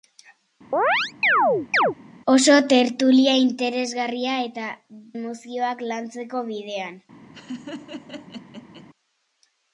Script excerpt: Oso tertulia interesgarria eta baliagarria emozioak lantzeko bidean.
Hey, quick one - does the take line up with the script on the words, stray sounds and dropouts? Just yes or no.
no